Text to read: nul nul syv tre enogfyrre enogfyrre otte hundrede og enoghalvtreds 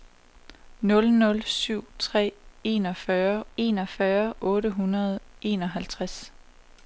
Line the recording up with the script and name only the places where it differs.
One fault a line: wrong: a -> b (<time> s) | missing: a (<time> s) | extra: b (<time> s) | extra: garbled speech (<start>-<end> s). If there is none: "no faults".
no faults